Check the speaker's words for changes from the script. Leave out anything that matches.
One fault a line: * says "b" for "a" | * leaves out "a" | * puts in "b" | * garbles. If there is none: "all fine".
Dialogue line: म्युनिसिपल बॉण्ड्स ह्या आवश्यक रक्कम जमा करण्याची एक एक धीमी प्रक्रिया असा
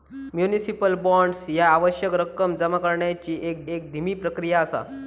all fine